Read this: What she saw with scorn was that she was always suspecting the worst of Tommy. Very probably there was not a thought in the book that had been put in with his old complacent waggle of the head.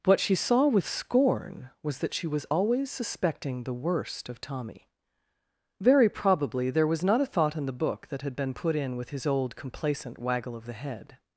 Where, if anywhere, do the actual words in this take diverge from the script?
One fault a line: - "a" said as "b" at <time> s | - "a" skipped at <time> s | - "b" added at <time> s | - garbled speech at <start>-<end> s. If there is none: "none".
none